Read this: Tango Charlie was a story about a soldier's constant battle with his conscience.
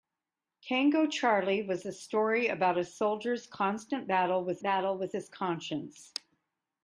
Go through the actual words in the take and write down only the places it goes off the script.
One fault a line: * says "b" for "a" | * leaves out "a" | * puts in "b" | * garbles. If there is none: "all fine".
* puts in "battle with"